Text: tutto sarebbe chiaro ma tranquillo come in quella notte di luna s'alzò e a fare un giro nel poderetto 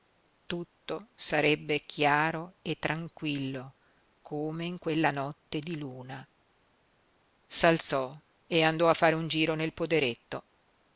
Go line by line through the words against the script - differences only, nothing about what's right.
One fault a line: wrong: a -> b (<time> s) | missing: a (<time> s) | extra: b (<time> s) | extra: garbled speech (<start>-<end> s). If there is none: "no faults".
wrong: ma -> e (2.6 s)
extra: andò (8.6 s)